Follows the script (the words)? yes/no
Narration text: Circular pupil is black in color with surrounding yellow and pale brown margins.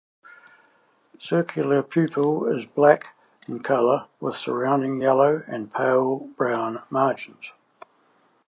yes